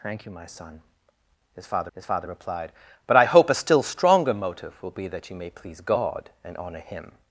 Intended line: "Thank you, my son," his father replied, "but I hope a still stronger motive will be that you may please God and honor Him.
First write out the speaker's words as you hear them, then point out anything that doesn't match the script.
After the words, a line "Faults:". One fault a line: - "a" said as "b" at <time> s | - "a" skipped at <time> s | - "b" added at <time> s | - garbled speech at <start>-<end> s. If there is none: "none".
"Thank you, my son," his father his father replied, "but I hope a still stronger motive will be that you may please God and honor Him.
Faults:
- "his father" added at 1.9 s